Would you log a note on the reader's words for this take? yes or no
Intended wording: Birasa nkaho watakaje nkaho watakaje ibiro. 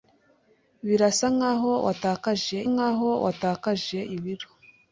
no